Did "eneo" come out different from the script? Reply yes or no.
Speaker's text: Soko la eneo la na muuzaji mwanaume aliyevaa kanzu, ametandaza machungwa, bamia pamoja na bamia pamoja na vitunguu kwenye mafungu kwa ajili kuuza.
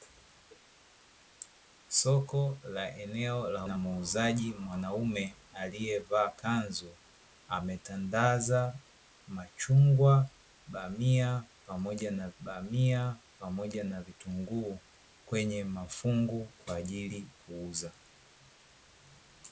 no